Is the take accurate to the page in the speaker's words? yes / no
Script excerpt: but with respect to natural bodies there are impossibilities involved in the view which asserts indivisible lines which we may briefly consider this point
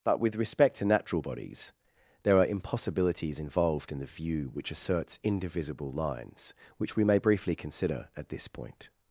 no